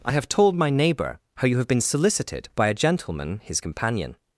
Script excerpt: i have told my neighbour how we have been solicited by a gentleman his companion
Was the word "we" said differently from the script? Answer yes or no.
yes